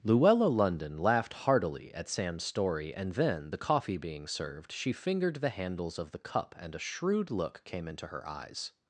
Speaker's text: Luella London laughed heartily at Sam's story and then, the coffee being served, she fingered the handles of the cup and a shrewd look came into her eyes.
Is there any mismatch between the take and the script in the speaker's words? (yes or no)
no